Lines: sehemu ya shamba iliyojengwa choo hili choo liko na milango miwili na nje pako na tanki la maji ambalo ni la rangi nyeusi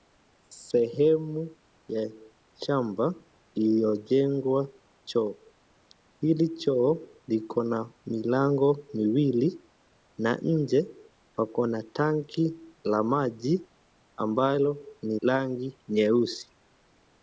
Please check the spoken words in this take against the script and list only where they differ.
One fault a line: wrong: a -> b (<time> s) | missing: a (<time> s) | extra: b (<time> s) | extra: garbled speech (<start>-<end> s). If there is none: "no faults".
missing: la (15.2 s)